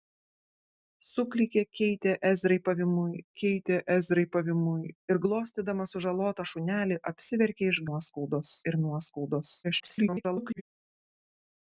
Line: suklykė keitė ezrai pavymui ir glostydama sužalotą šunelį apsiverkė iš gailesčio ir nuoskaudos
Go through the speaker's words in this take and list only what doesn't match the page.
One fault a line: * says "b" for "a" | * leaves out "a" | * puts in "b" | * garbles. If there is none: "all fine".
* puts in "keitė ezrai pavymui"
* says "nuoskaudos" for "gailesčio"
* garbles